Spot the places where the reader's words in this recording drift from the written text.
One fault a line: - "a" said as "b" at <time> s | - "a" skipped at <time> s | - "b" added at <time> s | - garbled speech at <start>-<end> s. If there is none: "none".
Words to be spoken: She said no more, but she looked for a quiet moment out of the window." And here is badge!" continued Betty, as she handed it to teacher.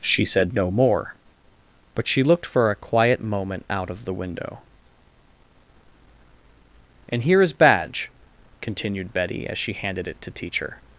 none